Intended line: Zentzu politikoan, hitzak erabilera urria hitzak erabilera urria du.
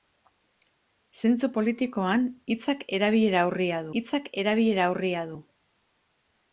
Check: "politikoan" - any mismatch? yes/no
no